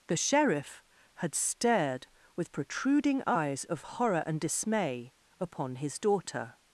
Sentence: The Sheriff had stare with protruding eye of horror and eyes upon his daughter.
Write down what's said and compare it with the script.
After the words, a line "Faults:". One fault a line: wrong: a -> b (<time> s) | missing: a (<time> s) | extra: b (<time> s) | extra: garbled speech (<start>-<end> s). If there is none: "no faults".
The Sheriff had stared with protruding eyes of horror and dismay upon his daughter.
Faults:
wrong: stare -> stared (1.4 s)
wrong: eye -> eyes (3.3 s)
wrong: eyes -> dismay (4.4 s)